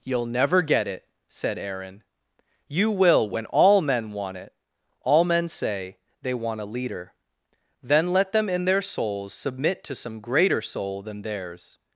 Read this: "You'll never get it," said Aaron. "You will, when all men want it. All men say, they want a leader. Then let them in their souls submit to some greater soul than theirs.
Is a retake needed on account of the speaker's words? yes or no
no